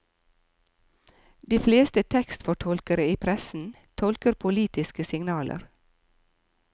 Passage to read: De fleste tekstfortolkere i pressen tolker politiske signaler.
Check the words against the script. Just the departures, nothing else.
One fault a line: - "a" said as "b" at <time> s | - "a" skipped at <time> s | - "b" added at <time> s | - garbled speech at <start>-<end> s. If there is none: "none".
none